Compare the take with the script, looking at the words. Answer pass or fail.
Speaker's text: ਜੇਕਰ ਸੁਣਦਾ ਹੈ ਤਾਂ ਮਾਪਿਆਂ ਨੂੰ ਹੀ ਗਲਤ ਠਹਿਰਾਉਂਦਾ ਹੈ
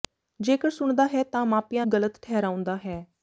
fail